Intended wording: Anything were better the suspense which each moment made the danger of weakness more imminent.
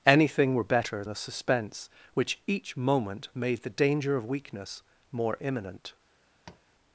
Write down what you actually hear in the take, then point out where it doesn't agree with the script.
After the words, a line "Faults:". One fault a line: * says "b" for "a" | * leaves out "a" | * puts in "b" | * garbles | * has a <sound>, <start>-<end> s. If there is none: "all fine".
Anything were better the suspense which each moment made the danger of weakness more imminent.
Faults:
* has a tap, 6.5-6.6 s